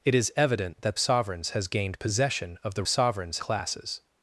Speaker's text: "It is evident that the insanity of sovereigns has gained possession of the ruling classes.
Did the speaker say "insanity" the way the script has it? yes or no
no